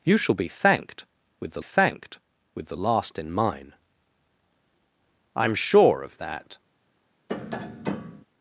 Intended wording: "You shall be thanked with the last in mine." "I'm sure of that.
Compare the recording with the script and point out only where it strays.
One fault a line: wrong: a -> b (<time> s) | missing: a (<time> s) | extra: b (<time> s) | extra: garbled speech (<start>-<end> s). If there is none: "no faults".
extra: thanked with the (1.6 s)